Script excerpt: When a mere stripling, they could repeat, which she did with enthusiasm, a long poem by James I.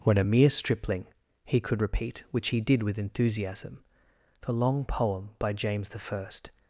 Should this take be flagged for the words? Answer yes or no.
yes